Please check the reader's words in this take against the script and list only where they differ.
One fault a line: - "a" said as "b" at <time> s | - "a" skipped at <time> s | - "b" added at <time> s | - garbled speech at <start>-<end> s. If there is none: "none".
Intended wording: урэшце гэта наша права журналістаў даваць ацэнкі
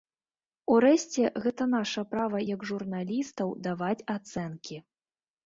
- "як" added at 2.5 s